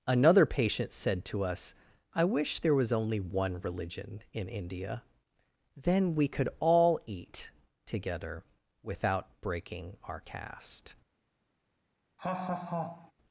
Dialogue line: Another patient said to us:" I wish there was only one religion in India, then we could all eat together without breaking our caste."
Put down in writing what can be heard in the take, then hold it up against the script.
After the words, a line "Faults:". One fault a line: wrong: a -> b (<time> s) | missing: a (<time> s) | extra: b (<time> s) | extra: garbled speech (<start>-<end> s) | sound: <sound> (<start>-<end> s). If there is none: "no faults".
Another patient said to us:" I wish there was only one religion in India, then we could all eat together without breaking our caste."
Faults:
sound: laugh (12.2-13.1 s)